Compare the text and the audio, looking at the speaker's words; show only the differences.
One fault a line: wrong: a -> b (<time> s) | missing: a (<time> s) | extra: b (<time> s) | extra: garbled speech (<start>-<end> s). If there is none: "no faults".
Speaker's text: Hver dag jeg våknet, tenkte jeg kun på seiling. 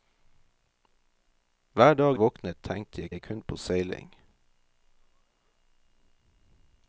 missing: jeg (2.2 s)
extra: jeg (3.1 s)